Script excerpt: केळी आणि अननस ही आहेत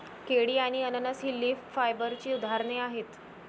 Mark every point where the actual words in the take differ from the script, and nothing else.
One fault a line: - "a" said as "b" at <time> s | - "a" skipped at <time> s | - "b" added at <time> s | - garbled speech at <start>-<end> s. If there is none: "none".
- "लीफ फायबरची उदाहरणे" added at 1.4 s